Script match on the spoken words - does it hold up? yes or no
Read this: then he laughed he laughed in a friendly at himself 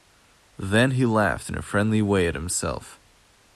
no